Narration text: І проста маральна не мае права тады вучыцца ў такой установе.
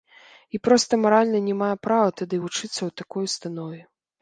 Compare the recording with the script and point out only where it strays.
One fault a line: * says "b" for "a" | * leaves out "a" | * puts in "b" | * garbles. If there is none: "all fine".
all fine